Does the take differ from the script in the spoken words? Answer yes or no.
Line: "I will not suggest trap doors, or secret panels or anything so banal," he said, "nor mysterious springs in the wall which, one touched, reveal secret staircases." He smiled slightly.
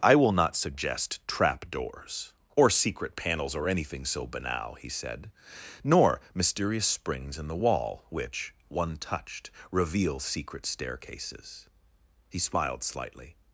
no